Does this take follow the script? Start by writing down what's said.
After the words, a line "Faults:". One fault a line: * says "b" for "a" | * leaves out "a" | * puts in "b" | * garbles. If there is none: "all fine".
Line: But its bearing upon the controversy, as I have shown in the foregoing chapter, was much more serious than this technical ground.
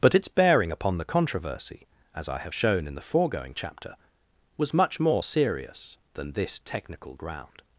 But its bearing upon the controversy, as I have shown in the foregoing chapter, was much more serious than this technical ground.
Faults:
all fine